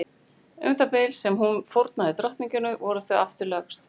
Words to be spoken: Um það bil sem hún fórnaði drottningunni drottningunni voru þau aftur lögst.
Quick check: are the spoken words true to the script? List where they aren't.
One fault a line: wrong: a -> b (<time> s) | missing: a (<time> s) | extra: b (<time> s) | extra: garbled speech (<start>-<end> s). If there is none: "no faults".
missing: drottningunni (2.8 s)